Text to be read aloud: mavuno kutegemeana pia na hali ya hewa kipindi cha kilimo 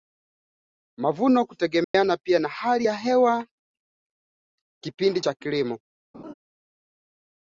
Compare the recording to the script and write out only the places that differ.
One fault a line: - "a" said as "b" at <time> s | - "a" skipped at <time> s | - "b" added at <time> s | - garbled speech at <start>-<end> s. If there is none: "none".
none